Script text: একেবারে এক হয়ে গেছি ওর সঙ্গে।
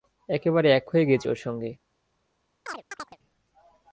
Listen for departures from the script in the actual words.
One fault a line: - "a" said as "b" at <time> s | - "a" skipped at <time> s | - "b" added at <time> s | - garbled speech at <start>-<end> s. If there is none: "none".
none